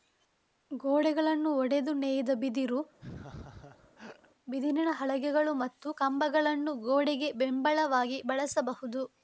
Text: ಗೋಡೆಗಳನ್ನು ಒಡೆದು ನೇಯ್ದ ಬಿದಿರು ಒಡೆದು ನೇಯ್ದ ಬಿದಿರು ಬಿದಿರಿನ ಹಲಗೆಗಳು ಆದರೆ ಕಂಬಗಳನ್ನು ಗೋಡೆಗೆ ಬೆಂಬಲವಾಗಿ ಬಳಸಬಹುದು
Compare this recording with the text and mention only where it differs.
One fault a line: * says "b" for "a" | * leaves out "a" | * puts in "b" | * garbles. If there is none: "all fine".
* leaves out "ಒಡೆದು ನೇಯ್ದ ಬಿದಿರು"
* says "ಮತ್ತು" for "ಆದರೆ"